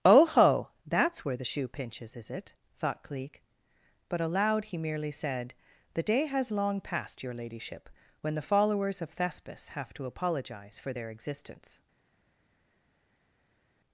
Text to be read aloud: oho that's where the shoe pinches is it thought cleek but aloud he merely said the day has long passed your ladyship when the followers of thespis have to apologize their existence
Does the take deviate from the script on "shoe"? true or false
false